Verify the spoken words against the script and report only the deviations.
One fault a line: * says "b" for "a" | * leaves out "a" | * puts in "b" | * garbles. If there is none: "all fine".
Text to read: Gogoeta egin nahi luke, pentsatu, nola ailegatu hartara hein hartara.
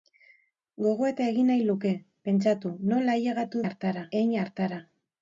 all fine